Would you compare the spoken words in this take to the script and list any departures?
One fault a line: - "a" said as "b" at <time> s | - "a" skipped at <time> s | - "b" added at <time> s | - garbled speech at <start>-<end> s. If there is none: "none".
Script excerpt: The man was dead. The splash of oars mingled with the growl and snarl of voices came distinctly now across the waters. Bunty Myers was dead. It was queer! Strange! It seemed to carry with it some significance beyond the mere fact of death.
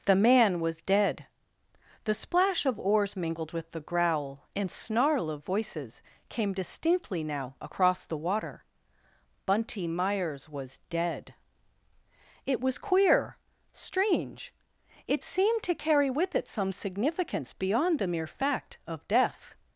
- "waters" said as "water" at 8.2 s